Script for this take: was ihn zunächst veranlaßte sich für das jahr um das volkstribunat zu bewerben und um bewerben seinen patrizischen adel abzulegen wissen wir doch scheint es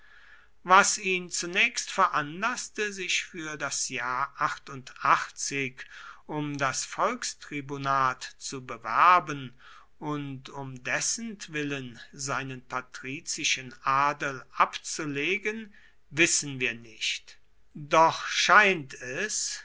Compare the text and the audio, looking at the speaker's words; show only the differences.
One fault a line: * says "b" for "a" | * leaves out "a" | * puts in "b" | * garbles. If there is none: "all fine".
* says "dessentwillen" for "bewerben"
* puts in "nicht"